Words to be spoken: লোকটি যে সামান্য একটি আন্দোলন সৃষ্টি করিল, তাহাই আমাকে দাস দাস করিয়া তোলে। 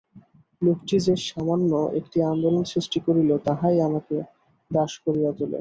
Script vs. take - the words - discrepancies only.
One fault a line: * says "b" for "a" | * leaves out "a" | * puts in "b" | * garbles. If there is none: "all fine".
* leaves out "দাস"